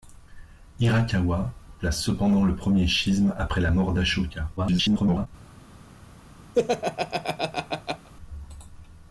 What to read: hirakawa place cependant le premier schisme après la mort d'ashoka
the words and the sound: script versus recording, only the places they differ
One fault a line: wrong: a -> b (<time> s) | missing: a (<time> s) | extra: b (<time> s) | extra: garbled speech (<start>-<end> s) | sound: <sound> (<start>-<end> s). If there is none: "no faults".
extra: garbled speech (4.6-5.3 s)
sound: laugh (6.5-8.1 s)